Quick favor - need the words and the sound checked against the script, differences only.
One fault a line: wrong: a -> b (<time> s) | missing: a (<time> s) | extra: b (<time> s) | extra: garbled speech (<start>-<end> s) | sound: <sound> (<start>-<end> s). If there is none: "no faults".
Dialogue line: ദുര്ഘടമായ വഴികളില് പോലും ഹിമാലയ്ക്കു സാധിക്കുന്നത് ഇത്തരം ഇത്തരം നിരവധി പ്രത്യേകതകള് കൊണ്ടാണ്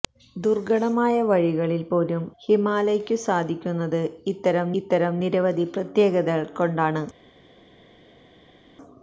no faults